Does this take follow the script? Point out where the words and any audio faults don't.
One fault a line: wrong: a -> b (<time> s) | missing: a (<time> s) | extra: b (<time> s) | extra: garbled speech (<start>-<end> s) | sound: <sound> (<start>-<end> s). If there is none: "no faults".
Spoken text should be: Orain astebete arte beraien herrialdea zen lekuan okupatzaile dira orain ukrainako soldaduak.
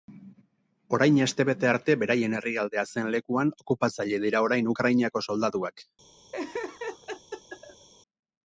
sound: laugh (6.3-7.9 s)